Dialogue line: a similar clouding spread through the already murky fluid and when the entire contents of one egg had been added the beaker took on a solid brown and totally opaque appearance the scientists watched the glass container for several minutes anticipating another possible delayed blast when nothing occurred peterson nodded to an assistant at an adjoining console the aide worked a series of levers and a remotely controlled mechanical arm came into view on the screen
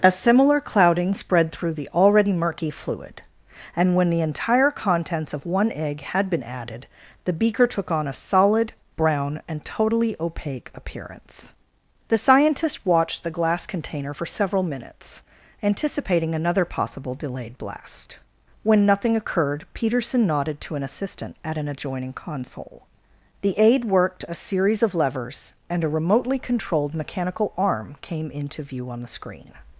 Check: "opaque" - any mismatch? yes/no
no